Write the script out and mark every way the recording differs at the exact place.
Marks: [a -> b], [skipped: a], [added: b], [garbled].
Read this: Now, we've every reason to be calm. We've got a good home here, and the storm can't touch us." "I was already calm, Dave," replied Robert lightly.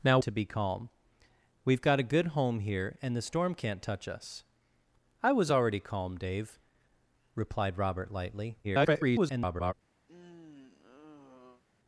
Now, [skipped: we've every reason] to be calm. We've got a good home here, and the storm can't touch us." "I was already calm, Dave," replied Robert lightly. [garbled]